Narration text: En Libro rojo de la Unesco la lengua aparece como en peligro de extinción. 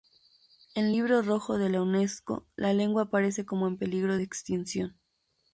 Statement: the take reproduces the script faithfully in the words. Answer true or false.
true